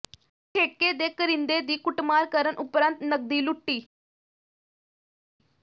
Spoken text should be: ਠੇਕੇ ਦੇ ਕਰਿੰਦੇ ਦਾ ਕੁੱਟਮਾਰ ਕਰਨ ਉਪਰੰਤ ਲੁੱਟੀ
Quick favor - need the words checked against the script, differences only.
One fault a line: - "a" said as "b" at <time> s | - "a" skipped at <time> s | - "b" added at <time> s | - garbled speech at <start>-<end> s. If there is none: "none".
- "ਦਾ" said as "ਦੀ" at 1.6 s
- "ਨਕਦੀ" added at 3.0 s